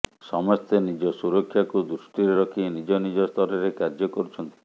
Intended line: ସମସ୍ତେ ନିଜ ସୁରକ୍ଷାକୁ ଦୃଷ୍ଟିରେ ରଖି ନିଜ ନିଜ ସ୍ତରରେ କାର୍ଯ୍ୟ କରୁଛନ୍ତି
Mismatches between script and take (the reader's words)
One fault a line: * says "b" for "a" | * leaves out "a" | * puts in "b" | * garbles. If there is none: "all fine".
all fine